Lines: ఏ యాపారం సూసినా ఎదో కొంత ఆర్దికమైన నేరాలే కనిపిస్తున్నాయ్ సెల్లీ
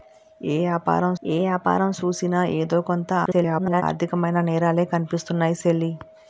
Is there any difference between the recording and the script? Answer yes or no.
yes